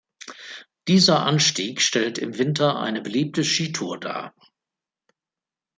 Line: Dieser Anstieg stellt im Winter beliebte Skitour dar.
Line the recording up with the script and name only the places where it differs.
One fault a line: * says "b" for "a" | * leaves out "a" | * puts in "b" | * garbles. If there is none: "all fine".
* puts in "eine"